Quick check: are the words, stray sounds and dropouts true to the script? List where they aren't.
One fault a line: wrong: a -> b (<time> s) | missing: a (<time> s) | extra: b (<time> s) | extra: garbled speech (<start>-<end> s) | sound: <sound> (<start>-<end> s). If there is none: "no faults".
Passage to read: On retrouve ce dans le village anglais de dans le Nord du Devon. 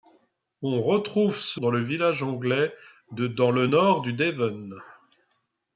no faults